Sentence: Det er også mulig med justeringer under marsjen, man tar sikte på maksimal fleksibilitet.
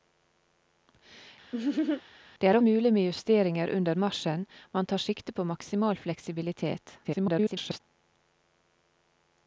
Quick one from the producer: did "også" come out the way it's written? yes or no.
no